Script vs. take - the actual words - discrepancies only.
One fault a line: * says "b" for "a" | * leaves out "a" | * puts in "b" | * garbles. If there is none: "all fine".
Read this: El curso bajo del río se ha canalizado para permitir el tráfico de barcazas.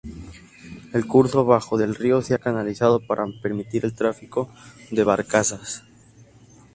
all fine